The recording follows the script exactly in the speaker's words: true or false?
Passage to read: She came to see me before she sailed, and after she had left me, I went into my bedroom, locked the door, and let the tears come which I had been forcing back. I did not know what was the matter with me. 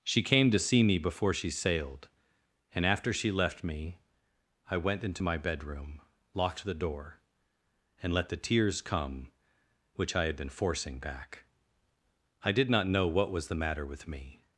false